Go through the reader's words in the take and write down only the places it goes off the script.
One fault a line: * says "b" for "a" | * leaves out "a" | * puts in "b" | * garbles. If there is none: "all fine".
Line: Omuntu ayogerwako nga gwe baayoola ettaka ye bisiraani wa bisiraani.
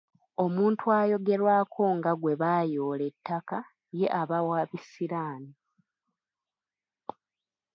* says "aba" for "bisiraani"